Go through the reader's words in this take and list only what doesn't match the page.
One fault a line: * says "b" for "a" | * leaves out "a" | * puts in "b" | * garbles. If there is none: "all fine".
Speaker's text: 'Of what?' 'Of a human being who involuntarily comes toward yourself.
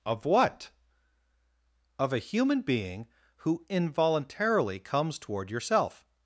all fine